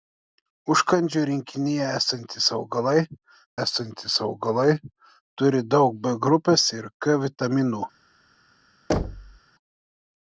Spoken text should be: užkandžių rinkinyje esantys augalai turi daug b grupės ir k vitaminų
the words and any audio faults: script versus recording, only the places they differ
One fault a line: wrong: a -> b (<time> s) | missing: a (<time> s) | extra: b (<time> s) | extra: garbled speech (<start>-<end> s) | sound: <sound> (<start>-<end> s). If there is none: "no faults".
extra: esantys augalai (3.6 s)
sound: thud (8.9-9.4 s)